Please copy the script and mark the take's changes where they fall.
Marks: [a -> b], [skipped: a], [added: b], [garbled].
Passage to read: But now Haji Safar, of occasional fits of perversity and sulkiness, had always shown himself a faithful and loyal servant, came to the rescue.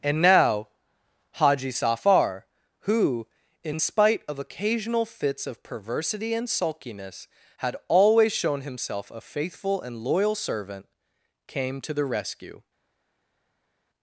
[But -> And] now Haji Safar, [added: who in spite] of occasional fits of perversity and sulkiness, had always shown himself a faithful and loyal servant, came to the rescue.